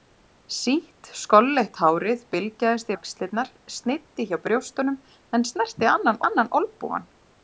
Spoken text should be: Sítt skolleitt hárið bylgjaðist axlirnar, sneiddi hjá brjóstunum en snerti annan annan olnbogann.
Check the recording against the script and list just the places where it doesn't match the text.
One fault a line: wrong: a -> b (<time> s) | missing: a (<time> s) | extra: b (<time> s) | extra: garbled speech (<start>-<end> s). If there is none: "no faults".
no faults